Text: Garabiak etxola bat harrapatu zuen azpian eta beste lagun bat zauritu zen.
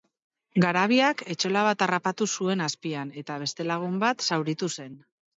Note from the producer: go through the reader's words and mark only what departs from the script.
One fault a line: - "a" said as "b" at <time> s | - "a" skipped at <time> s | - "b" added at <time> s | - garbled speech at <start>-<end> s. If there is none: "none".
none